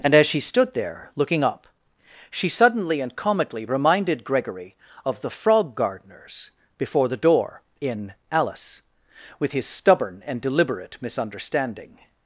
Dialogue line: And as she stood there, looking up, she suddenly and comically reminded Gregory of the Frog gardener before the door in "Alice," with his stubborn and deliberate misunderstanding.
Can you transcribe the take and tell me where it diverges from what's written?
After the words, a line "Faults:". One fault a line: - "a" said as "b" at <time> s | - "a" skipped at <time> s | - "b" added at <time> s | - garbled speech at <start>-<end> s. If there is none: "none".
And as she stood there, looking up, she suddenly and comically reminded Gregory of the Frog gardeners before the door in "Alice," with his stubborn and deliberate misunderstanding.
Faults:
- "gardener" said as "gardeners" at 5.8 s